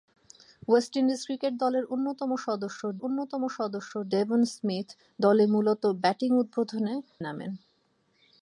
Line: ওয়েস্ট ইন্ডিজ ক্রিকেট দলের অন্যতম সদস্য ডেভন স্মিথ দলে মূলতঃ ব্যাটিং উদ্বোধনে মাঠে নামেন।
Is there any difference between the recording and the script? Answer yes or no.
yes